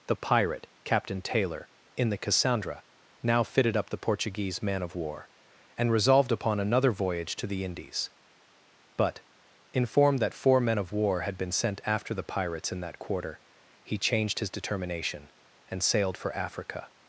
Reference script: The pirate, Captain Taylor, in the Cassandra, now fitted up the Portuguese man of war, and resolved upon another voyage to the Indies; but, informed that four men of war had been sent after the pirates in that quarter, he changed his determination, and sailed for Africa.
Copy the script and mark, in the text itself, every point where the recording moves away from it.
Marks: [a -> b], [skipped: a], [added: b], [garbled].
The pirate, Captain Taylor, in the Cassandra, now fitted up the Portuguese man of war, and resolved upon another voyage to the Indies; but, informed that four men of war had been sent after the pirates in that quarter, he changed his determination, and sailed for Africa.